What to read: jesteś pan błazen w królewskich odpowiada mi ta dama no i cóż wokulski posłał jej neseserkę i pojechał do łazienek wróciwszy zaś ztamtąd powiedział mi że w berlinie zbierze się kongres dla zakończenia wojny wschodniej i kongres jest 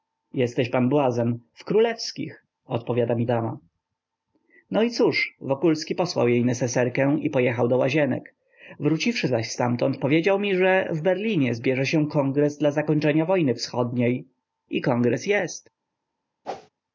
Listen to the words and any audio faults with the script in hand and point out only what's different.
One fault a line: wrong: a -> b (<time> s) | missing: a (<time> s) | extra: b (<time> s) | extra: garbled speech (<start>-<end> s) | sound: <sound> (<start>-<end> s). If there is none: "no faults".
missing: ta (3.3 s)
sound: whoosh (16.4-16.7 s)